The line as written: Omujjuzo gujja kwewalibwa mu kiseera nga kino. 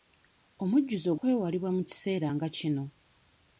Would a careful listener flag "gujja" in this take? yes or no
yes